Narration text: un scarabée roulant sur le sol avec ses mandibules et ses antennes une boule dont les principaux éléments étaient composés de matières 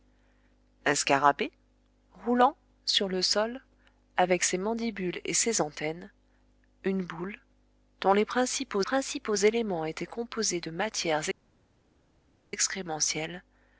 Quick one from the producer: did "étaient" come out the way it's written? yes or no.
yes